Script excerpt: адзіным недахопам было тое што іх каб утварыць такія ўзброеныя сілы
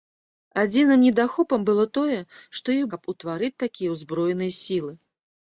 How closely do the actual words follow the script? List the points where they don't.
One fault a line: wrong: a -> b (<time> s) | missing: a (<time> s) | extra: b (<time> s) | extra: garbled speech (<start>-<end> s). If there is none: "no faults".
no faults